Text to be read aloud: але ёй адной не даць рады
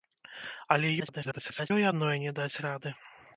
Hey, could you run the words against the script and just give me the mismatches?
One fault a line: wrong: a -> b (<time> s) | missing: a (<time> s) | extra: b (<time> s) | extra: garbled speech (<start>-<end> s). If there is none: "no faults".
extra: garbled speech (1.0-1.7 s)